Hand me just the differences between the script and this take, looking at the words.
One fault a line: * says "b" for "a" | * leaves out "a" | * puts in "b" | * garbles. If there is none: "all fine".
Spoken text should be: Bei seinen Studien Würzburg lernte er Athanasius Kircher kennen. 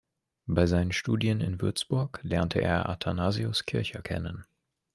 * puts in "in"